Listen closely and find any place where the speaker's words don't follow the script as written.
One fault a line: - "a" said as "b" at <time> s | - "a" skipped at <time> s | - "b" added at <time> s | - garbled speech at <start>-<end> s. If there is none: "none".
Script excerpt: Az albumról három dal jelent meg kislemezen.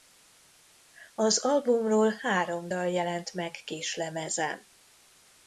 none